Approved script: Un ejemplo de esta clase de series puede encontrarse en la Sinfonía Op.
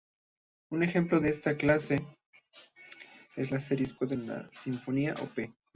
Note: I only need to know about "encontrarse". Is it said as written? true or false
false